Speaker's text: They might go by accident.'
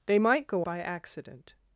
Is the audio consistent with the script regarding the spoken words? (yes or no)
yes